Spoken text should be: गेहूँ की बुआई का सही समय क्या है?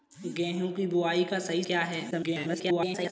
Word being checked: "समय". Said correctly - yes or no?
no